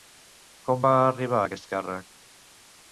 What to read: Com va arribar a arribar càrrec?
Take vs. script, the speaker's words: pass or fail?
fail